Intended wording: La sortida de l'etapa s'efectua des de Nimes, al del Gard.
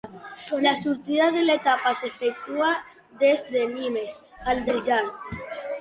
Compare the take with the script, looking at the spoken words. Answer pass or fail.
pass